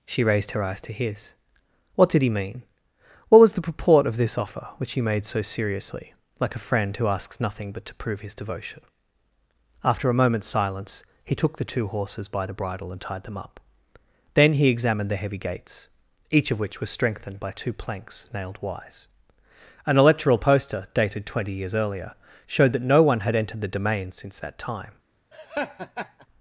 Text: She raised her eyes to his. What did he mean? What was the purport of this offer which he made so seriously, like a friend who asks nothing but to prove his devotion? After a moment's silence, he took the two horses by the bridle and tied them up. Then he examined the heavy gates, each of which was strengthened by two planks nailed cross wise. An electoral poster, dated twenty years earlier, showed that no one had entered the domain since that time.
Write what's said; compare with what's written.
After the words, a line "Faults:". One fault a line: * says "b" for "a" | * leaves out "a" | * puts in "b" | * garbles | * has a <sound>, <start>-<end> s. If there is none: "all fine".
She raised her eyes to his. What did he mean? What was the purport of this offer which he made so seriously, like a friend who asks nothing but to prove his devotion? After a moment's silence, he took the two horses by the bridle and tied them up. Then he examined the heavy gates, each of which was strengthened by two planks nailed wise. An electoral poster, dated twenty years earlier, showed that no one had entered the domain since that time.
Faults:
* leaves out "cross"
* has a laugh, 25.3-26.3 s